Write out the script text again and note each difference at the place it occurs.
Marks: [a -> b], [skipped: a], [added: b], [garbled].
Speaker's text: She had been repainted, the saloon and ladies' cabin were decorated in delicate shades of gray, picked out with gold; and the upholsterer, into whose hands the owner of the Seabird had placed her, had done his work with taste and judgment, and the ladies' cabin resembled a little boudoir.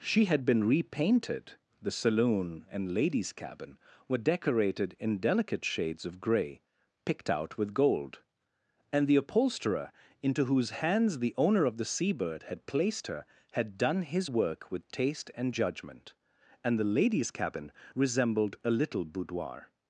She had been repainted, the saloon and ladies' cabin were decorated in delicate shades of gray, picked out with gold; and the upholsterer, into whose hands the owner of the Seabird had placed her, had done his work with taste and judgment, and the ladies' cabin resembled a little boudoir.